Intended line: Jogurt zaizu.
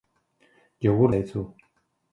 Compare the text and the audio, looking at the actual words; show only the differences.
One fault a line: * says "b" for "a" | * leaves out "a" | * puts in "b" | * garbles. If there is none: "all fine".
all fine